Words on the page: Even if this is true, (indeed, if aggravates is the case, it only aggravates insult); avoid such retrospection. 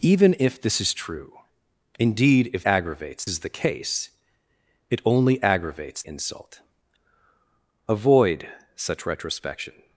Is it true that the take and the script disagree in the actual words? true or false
false